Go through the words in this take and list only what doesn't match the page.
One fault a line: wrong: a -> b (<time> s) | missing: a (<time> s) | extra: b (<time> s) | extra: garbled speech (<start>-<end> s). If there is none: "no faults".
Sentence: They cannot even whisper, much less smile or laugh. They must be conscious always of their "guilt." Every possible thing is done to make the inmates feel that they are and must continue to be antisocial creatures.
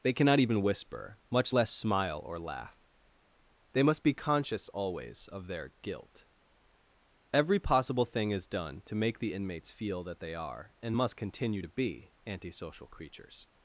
no faults